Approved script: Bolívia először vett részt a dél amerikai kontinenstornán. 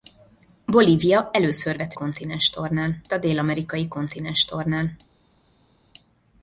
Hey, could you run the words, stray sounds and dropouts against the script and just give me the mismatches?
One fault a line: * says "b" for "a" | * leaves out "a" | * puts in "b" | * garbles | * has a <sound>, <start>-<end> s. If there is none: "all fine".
* says "kontinenstornán" for "részt"